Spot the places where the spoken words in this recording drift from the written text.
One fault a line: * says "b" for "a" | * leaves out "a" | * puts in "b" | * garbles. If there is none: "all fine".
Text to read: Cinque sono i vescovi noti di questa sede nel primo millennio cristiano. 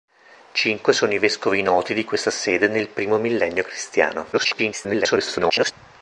* garbles